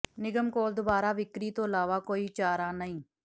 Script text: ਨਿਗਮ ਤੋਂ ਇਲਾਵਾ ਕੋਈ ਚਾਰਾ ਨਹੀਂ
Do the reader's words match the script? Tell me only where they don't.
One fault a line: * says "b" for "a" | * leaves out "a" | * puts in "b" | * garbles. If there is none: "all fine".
* puts in "ਕੋਲ ਦੁਬਾਰਾ ਵਿਕਰੀ"